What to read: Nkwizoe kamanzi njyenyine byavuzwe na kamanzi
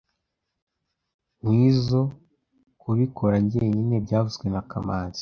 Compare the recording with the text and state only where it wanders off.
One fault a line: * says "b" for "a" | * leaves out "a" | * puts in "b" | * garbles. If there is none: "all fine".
* says "kubikora" for "kamanzi"